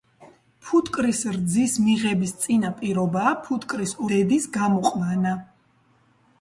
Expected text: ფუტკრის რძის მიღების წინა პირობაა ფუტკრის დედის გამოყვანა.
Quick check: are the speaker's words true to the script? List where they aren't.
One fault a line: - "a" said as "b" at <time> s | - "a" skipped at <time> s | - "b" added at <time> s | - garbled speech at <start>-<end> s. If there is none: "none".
none